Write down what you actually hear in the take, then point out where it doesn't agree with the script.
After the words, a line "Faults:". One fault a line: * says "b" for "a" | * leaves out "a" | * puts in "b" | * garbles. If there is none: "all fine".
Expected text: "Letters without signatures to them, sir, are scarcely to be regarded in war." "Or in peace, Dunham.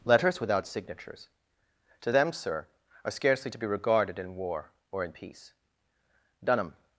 "Letters without signatures to them, sir, are scarcely to be regarded in war." "Or in peace, Dunham.
Faults:
all fine